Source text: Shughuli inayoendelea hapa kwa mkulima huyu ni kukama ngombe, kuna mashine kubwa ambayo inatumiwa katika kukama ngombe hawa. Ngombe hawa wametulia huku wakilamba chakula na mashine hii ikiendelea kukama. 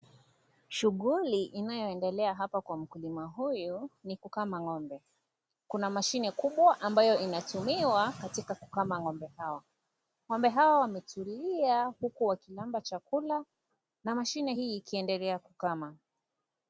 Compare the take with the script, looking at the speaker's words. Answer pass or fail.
pass